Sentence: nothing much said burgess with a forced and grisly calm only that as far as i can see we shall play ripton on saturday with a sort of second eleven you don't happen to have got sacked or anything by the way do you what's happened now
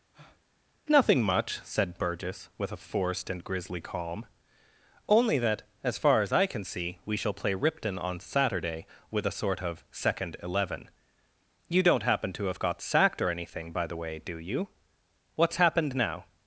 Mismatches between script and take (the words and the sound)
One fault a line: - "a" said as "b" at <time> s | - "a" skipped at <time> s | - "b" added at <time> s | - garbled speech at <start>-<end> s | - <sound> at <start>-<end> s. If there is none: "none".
- breath at 0.1-0.4 s